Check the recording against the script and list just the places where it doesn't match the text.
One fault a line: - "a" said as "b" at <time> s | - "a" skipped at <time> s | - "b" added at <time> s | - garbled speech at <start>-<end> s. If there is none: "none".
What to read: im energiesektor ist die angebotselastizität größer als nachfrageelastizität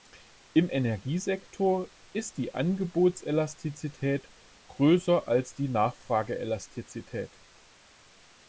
- "die" added at 5.5 s